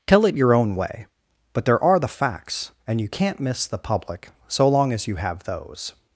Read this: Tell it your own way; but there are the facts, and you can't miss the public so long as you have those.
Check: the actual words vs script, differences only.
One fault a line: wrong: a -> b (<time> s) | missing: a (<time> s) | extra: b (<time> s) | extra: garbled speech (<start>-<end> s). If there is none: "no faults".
no faults